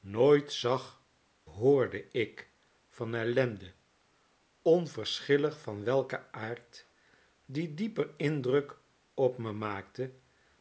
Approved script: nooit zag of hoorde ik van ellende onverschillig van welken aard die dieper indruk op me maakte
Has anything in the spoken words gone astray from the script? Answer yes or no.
yes